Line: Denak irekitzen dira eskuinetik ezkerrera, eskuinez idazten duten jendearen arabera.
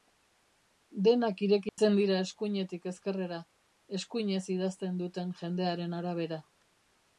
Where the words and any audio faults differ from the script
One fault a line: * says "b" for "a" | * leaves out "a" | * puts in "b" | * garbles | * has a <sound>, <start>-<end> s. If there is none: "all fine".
* has a dropout, 1.7-1.8 s